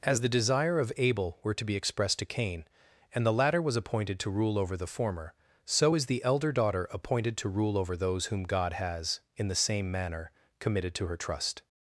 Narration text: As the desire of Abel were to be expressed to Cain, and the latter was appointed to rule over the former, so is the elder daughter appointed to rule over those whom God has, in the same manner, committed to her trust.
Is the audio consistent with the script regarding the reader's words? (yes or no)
yes